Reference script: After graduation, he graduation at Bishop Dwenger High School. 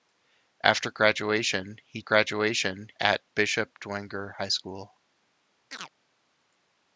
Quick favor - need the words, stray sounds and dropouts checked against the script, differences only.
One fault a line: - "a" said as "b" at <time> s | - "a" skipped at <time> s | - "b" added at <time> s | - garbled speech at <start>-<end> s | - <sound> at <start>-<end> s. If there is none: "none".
- chirp at 5.7-5.9 s